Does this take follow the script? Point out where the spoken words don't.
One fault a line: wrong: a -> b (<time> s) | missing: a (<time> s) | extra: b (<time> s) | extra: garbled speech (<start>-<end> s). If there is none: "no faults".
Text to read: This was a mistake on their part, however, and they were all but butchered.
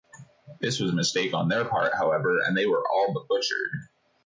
no faults